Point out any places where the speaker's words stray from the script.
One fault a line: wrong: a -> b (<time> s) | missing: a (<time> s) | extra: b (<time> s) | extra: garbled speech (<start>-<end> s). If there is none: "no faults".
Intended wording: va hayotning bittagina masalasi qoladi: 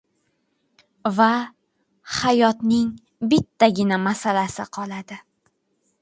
no faults